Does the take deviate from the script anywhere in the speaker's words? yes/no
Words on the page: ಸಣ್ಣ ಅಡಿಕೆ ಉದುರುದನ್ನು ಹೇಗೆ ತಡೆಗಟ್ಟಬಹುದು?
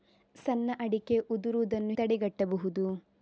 yes